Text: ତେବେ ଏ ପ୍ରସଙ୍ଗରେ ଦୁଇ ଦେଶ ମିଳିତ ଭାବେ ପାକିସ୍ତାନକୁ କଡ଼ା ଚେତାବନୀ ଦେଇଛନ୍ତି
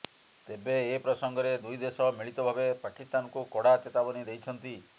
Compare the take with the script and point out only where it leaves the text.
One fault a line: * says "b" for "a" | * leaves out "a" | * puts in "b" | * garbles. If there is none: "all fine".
all fine